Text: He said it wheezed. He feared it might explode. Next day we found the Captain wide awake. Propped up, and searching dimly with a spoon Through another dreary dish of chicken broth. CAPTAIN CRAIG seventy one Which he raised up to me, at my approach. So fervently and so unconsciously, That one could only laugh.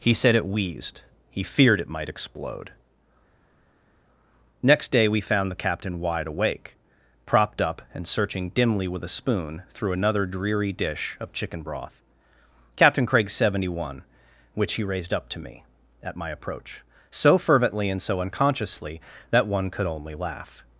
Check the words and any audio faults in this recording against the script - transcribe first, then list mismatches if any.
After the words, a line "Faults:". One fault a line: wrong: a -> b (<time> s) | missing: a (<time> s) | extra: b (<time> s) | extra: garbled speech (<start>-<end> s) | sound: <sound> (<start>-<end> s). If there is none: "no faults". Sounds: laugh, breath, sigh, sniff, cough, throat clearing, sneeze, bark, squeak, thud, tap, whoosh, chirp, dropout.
He said it wheezed. He feared it might explode. Next day we found the Captain wide awake. Propped up, and searching dimly with a spoon Through another dreary dish of chicken broth. CAPTAIN CRAIG seventy one Which he raised up to me, at my approach. So fervently and so unconsciously, That one could only laugh.
Faults:
no faults